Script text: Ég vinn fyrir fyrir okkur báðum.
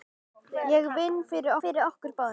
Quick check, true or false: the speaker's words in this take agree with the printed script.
true